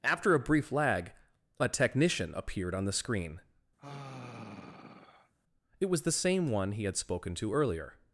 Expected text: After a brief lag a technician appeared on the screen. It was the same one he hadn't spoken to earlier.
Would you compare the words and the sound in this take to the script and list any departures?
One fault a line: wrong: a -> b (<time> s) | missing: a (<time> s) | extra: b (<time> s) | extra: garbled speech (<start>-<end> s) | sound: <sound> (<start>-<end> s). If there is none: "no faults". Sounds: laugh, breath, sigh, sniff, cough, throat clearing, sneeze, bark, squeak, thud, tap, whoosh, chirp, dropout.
sound: sigh (3.8-5.3 s)
wrong: hadn't -> had (6.8 s)